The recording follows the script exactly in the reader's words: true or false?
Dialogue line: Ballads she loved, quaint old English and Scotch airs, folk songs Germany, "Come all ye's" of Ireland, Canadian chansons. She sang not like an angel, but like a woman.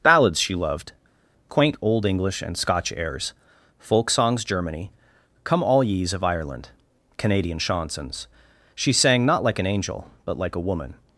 true